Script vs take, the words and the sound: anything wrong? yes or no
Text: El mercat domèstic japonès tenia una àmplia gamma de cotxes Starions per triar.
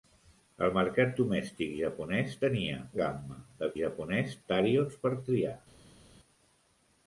yes